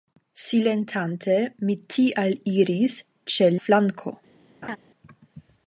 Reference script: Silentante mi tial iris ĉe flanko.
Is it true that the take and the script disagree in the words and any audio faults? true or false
true